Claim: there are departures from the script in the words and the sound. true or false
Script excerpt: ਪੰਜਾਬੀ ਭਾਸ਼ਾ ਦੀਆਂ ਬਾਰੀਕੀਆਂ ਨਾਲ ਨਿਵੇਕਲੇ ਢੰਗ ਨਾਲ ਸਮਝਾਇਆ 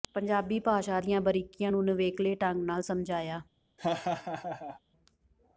true